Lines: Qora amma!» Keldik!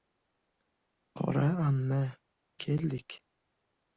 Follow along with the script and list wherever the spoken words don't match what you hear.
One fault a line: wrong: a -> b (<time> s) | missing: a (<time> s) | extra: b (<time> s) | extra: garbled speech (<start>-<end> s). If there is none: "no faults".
no faults